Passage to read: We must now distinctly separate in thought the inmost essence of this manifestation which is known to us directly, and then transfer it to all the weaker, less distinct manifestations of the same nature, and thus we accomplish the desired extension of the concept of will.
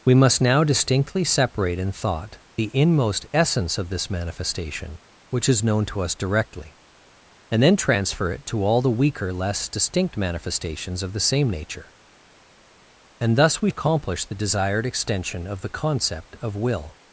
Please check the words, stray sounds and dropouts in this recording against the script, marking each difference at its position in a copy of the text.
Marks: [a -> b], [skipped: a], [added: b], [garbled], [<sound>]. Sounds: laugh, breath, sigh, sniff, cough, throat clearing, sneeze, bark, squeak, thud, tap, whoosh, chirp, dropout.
We must now distinctly separate in thought the inmost essence of this manifestation which is known to us directly, and then transfer it to all the weaker, less distinct manifestations of the same nature, and thus we accomplish the desired extension of the concept of will.